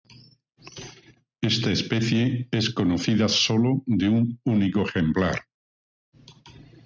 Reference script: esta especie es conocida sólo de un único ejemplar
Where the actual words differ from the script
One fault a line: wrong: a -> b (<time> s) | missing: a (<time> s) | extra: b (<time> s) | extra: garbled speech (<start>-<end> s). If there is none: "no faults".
no faults